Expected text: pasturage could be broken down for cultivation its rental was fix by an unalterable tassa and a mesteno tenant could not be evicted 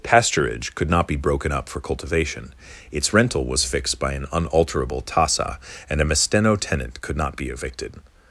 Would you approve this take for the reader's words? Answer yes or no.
no